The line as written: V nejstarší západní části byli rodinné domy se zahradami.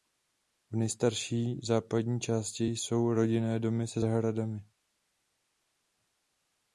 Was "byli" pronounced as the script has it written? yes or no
no